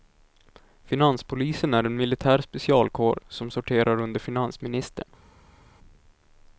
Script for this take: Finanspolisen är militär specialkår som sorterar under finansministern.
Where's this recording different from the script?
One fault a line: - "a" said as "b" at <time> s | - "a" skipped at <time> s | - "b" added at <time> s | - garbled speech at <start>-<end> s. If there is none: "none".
- "en" added at 1.8 s